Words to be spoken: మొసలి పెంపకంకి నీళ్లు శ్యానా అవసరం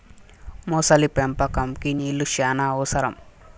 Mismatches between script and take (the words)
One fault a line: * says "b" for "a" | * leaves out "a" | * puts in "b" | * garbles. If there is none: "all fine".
all fine